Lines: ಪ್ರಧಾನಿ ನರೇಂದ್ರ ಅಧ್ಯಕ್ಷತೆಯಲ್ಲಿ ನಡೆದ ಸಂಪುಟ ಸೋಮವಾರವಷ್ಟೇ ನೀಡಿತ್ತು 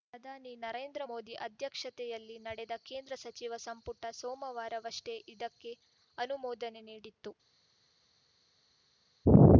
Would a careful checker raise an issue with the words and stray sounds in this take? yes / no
yes